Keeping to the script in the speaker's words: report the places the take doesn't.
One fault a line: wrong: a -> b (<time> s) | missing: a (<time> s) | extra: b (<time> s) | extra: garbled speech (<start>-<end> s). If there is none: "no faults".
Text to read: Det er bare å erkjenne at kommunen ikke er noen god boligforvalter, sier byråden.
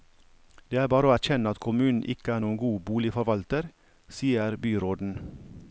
no faults